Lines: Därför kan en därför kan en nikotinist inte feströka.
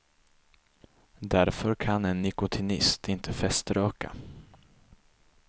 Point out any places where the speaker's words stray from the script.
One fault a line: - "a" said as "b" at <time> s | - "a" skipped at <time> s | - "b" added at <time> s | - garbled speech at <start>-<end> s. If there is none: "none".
- "därför kan en" skipped at 2.2 s